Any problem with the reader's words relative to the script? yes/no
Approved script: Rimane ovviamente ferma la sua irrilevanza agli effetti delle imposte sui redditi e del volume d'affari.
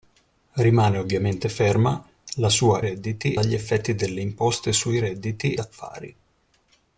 yes